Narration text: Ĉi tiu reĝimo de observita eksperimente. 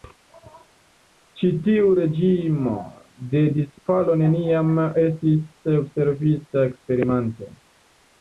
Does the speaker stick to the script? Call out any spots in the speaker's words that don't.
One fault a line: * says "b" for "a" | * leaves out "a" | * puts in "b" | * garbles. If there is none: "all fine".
* puts in "disfalo neniam estis"